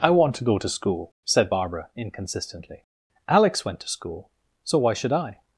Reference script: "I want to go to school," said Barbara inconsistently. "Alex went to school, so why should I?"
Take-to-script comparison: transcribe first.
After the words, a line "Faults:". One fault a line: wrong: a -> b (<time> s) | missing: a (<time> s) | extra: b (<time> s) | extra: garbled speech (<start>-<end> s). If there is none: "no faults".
"I want to go to school," said Barbara inconsistently. "Alex went to school, so why should I?"
Faults:
no faults